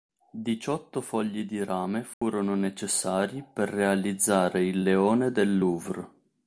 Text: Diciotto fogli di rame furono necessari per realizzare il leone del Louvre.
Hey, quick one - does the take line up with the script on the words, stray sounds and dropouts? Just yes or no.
no